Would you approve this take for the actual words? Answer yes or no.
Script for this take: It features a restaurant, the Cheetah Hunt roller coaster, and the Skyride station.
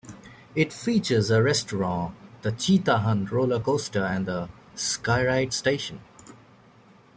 yes